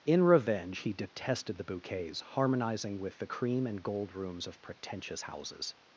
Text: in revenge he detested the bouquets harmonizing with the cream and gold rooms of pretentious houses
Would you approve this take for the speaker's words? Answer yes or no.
yes